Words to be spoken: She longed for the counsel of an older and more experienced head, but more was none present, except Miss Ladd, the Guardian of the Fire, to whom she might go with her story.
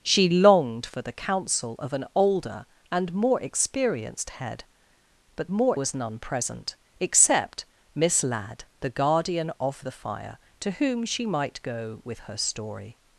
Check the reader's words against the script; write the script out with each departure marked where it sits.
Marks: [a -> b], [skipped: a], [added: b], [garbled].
She longed for the counsel of an older and more experienced head, but more was none present, except Miss Ladd, the Guardian of the Fire, to whom she might go with her story.